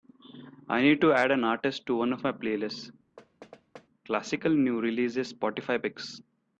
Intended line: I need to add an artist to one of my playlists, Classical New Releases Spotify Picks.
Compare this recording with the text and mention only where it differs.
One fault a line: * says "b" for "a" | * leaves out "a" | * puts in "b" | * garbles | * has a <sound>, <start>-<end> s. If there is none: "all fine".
* has a thud, 3.2-3.9 s